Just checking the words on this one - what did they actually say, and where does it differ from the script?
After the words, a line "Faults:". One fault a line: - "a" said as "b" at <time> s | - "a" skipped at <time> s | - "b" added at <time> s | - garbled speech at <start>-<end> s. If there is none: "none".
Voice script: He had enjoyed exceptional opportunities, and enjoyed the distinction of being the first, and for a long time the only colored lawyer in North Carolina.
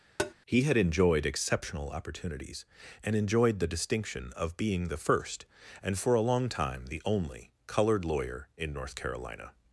He had enjoyed exceptional opportunities, and enjoyed the distinction of being the first, and for a long time the only colored lawyer in North Carolina.
Faults:
none